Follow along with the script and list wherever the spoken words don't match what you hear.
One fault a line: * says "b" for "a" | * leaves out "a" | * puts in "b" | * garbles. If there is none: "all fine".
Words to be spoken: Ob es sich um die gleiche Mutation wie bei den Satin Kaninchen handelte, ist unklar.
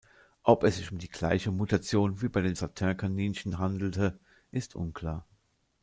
all fine